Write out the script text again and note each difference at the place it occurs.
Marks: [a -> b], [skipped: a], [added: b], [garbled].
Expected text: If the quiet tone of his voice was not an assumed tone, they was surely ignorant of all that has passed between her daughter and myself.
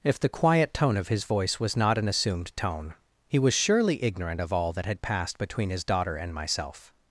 If the quiet tone of his voice was not an assumed tone, [they -> he] was surely ignorant of all that [has -> had] passed between [her -> his] daughter and myself.